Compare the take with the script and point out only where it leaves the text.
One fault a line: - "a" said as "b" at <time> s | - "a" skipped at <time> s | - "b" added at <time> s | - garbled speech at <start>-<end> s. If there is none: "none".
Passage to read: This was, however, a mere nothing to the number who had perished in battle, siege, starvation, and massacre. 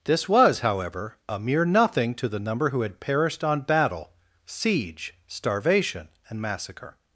- "in" said as "on" at 3.4 s